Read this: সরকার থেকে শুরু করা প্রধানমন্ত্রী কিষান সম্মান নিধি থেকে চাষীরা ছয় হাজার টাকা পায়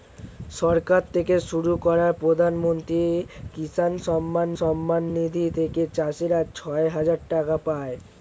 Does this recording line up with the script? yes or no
no